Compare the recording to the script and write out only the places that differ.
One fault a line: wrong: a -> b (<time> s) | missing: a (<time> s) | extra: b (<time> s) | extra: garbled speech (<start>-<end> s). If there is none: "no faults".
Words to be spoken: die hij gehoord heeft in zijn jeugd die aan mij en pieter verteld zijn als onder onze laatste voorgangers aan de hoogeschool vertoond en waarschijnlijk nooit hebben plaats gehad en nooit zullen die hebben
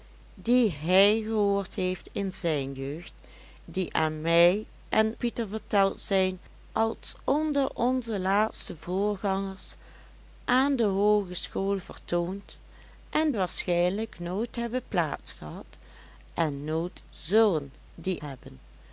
no faults